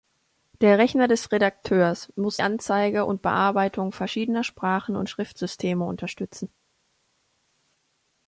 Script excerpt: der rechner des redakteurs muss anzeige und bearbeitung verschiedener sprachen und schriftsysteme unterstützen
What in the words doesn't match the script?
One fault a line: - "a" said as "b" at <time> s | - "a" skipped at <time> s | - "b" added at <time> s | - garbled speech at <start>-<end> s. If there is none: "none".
none